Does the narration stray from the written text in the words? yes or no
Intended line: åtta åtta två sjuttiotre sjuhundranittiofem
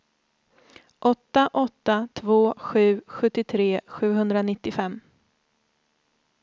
yes